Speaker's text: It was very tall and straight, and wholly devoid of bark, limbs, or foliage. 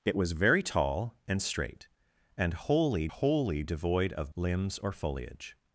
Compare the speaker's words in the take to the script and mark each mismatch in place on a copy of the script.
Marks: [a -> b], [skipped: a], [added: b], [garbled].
It was very tall and straight, and wholly [added: wholly] devoid of [skipped: bark,] limbs, or foliage.